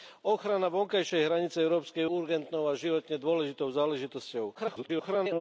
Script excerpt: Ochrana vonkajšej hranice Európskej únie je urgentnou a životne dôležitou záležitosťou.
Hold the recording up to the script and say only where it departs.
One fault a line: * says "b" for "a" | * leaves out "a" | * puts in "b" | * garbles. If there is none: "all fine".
* leaves out "únie je"
* garbles